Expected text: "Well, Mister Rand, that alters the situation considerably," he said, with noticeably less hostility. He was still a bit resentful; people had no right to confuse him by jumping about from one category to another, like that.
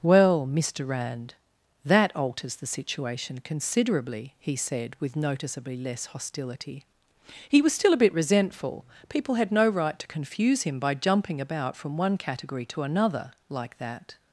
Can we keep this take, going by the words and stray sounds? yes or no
yes